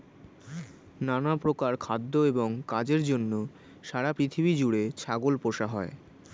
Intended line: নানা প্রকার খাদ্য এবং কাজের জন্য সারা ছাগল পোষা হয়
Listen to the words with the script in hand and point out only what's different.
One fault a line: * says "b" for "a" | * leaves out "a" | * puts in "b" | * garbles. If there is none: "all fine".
* puts in "পৃথিবী জুড়ে"